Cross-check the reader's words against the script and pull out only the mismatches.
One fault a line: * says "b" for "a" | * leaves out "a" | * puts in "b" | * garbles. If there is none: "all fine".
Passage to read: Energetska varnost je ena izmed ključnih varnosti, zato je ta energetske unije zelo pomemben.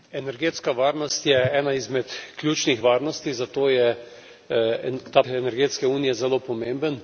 all fine